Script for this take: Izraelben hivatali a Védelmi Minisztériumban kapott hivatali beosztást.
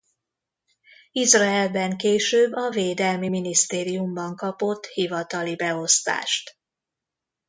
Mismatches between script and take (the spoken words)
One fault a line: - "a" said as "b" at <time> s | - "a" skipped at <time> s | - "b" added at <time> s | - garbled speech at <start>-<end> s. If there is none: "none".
- "hivatali" said as "később" at 2.0 s